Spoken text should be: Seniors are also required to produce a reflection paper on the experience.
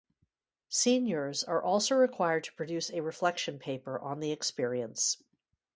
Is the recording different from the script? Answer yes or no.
no